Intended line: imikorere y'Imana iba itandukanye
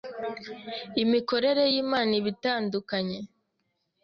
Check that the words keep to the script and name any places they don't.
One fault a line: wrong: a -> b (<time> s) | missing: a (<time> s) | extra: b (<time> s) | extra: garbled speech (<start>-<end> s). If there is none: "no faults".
no faults